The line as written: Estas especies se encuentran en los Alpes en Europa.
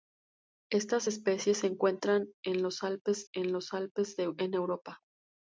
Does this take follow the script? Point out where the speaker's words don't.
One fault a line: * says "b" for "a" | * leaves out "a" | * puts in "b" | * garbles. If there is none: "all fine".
* puts in "los Alpes en"